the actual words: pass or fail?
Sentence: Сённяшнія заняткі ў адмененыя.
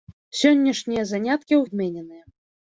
pass